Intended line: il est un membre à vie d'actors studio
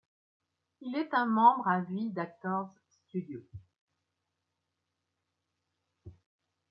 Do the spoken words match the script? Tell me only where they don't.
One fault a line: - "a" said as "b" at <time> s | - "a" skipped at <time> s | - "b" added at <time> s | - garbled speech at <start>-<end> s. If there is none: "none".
none